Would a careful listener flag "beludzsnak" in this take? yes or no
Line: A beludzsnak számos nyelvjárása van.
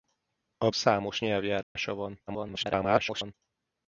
yes